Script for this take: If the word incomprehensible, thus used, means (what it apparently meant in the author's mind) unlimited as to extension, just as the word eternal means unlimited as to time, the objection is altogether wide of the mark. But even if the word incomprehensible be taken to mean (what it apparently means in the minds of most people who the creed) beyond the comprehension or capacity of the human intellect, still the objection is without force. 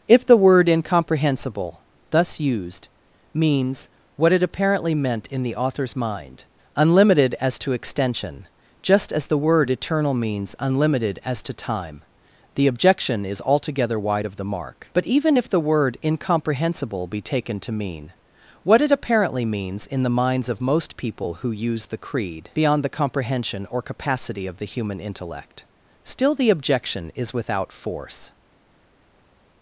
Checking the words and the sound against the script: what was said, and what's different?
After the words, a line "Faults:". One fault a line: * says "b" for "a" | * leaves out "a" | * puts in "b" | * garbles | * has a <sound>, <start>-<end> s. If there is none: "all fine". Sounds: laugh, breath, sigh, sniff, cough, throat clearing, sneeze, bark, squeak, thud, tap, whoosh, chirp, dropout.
If the word incomprehensible, thus used, means (what it apparently meant in the author's mind) unlimited as to extension, just as the word eternal means unlimited as to time, the objection is altogether wide of the mark. But even if the word incomprehensible be taken to mean (what it apparently means in the minds of most people who use the creed) beyond the comprehension or capacity of the human intellect, still the objection is without force.
Faults:
* puts in "use"